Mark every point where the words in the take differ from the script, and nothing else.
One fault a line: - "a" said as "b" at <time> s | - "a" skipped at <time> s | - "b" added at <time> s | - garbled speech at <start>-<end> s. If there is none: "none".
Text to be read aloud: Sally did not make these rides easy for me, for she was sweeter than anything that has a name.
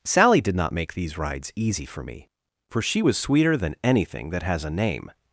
none